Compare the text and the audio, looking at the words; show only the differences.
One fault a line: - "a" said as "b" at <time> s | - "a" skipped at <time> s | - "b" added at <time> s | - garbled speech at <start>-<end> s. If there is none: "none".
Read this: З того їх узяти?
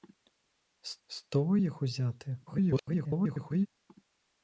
- "з" added at 1.1 s
- garbled speech at 2.5-3.7 s